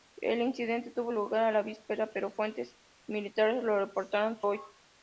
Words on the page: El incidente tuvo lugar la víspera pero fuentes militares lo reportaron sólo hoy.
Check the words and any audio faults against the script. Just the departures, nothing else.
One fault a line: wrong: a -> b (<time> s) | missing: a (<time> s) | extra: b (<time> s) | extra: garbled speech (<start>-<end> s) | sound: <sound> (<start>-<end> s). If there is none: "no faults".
missing: sólo (4.4 s)